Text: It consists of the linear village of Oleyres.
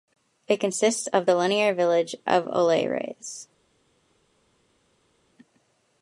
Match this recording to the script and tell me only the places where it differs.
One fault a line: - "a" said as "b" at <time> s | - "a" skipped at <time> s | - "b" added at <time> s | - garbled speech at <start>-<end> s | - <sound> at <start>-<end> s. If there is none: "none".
none